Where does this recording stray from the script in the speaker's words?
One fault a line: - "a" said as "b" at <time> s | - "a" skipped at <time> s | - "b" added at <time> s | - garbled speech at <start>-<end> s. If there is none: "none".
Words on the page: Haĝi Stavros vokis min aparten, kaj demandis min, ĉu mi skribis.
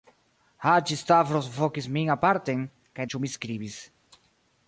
- "demandis min" skipped at 3.1 s